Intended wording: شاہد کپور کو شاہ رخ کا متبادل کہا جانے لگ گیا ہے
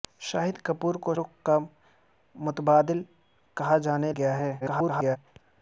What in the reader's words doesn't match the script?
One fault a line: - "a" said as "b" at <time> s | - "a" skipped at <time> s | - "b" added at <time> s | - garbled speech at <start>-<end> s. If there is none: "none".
- "شاہ" skipped at 1.1 s
- "لگ" skipped at 4.1 s
- garbled speech at 4.6-5.2 s